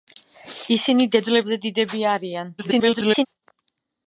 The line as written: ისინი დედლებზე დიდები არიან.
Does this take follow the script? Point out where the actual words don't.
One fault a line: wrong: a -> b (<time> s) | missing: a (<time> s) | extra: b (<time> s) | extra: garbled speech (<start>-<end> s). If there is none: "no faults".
extra: garbled speech (2.6-3.3 s)